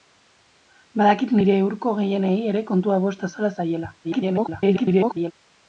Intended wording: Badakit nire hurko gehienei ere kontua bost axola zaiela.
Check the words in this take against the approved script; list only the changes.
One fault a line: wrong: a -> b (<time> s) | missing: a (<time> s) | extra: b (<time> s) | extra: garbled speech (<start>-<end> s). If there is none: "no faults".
extra: garbled speech (4.0-5.3 s)